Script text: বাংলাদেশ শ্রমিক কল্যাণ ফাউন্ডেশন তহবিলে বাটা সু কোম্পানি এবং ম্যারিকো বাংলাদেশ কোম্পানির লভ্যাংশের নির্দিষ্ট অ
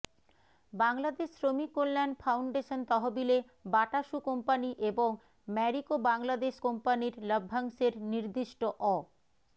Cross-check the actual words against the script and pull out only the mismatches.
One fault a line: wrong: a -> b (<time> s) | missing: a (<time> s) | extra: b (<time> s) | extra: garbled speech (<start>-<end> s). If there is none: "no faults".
no faults